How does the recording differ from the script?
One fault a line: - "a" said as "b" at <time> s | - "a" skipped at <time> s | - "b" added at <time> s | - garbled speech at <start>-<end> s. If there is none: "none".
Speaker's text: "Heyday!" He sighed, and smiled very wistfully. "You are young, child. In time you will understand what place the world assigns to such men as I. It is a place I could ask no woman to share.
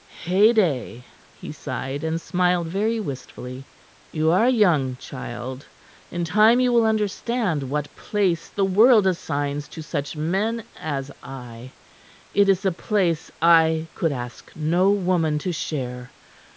none